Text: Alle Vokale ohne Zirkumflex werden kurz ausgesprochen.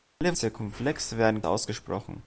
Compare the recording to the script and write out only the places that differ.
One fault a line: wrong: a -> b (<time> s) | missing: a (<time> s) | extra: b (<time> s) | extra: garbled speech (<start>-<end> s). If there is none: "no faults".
missing: Vokale ohne (0.3 s)
missing: kurz (1.4 s)